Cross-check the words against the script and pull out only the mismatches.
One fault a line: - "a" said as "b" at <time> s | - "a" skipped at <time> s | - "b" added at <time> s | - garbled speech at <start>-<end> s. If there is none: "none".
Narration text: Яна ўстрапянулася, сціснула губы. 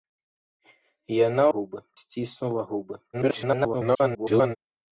- "ўстрапянулася" said as "губы" at 1.6 s
- garbled speech at 3.1-4.6 s